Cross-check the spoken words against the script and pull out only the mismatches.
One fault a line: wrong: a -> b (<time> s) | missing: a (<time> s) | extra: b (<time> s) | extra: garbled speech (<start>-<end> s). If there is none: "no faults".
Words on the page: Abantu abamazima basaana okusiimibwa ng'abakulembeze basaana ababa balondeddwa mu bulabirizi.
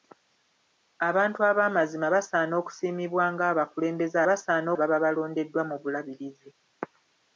no faults